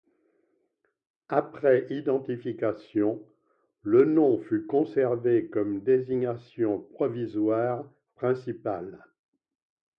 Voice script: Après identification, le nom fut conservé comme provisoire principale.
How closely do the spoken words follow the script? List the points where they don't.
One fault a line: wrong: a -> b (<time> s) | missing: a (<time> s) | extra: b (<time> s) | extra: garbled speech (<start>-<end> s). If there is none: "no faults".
extra: désignation (5.8 s)